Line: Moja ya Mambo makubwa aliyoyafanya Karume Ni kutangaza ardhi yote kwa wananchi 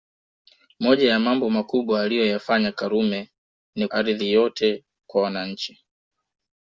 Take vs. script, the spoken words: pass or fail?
fail